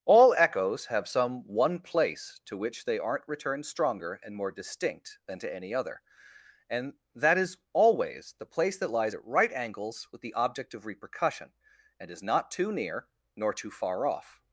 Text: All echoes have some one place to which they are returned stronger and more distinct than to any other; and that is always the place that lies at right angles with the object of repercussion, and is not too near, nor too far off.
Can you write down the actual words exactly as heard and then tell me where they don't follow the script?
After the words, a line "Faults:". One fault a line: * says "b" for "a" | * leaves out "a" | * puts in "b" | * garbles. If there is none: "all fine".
All echoes have some one place to which they aren't returned stronger and more distinct than to any other; and that is always the place that lies at right angles with the object of repercussion, and is not too near, nor too far off.
Faults:
* says "aren't" for "are"